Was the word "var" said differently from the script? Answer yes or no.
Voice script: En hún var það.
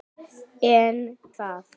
yes